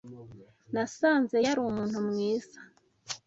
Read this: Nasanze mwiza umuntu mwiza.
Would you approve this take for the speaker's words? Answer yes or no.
no